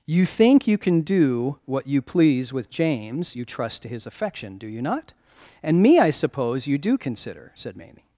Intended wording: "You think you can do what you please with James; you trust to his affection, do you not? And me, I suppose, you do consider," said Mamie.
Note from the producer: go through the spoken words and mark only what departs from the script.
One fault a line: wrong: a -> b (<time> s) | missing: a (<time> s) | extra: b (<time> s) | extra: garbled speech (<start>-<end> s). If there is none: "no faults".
no faults